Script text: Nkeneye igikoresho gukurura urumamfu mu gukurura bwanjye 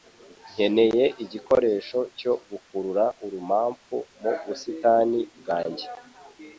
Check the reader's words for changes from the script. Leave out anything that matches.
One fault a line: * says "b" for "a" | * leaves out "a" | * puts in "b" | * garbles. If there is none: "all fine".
* puts in "cyo"
* says "busitani" for "gukurura"